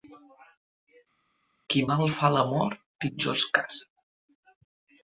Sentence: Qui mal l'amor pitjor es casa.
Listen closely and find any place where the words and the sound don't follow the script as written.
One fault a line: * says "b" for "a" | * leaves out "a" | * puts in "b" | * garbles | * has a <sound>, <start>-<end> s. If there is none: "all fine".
* puts in "fa"